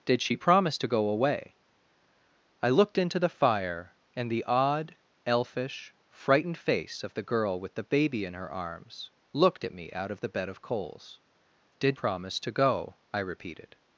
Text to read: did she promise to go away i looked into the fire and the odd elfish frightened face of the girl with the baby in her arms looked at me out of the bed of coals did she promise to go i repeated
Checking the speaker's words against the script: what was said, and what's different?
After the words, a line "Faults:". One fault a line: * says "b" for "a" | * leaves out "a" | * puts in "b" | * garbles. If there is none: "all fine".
did she promise to go away i looked into the fire and the odd elfish frightened face of the girl with the baby in her arms looked at me out of the bed of coals did promise to go i repeated
Faults:
* leaves out "she"